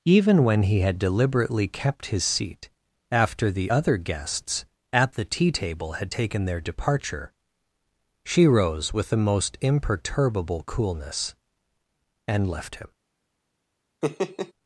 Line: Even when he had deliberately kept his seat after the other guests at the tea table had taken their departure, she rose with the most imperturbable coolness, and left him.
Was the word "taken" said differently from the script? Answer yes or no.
no